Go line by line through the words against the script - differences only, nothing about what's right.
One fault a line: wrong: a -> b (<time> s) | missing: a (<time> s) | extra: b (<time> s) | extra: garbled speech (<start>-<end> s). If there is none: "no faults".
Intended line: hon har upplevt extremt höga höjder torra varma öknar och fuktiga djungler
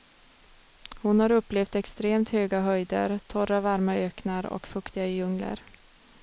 no faults